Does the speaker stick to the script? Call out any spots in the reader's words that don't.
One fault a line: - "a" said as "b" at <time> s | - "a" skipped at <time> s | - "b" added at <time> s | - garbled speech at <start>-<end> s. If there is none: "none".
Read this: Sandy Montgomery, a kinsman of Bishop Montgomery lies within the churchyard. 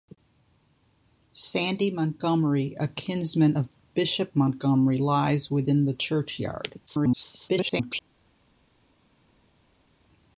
- garbled speech at 6.9-8.0 s